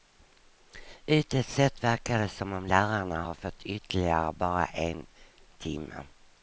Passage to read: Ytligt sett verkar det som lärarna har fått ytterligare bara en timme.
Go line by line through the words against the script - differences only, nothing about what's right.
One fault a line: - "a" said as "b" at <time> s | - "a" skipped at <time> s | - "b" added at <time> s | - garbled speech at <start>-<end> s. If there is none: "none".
- "om" added at 2.5 s